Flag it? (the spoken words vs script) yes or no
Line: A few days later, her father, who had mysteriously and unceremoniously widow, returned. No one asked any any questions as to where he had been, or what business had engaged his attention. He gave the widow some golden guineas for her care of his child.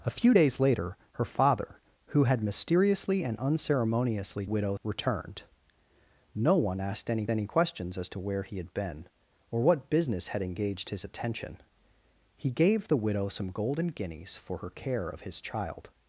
no